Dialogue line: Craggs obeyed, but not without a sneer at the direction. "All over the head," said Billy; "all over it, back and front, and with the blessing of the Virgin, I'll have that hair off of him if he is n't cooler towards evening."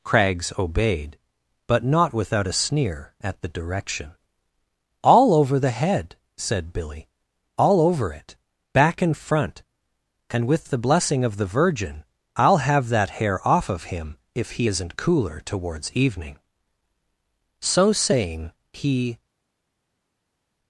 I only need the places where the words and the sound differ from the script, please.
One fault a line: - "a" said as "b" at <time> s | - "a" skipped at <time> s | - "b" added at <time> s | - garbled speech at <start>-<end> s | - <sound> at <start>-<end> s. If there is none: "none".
- "So saying he" added at 17.6 s